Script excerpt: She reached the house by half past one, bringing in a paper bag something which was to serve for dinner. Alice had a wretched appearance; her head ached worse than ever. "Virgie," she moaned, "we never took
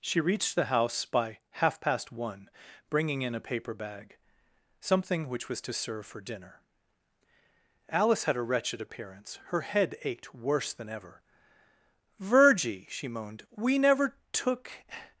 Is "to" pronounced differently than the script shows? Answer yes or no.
no